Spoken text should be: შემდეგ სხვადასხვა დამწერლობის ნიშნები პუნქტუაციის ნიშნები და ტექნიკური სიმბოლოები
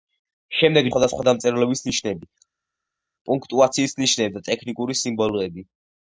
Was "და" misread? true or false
false